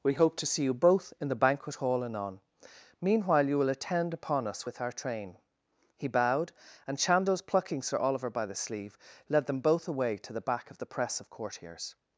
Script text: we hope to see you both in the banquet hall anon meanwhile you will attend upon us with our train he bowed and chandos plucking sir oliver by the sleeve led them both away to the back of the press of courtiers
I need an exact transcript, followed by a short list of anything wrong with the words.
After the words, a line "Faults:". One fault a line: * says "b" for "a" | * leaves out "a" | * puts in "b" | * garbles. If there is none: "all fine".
we hope to see you both in the banquet hall anon meanwhile you will attend upon us with our train he bowed and chandos plucking sir oliver by the sleeve led them both away to the back of the press of courtiers
Faults:
all fine